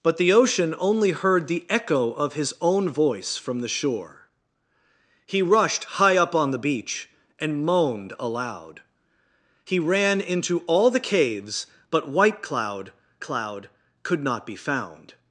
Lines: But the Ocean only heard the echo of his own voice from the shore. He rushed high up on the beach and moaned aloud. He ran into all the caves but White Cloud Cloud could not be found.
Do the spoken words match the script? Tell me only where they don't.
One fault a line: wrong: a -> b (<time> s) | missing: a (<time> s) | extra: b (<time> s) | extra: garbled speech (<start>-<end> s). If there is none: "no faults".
no faults